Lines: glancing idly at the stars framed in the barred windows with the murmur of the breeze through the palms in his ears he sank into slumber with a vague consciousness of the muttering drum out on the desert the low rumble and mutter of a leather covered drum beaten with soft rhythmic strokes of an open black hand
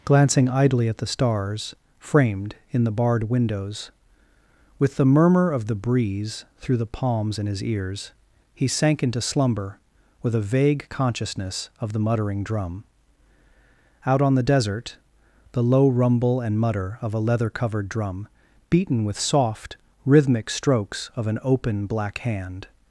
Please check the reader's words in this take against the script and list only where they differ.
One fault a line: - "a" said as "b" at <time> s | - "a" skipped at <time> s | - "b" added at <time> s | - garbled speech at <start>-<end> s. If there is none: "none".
none